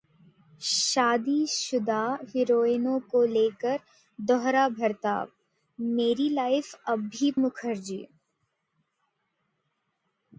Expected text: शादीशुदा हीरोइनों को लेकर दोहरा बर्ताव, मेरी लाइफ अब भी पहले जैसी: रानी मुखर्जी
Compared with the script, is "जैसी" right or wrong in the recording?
wrong